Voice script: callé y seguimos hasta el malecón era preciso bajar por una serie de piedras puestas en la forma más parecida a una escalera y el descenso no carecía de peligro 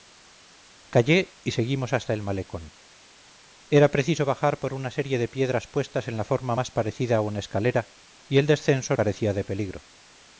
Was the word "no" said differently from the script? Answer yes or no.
yes